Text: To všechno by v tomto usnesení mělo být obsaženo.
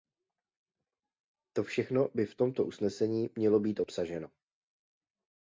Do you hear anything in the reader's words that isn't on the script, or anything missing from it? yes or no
no